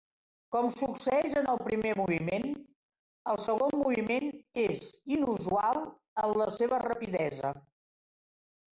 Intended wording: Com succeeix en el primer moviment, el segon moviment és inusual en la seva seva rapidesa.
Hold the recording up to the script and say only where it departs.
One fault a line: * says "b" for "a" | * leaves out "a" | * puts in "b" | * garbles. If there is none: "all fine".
* leaves out "seva"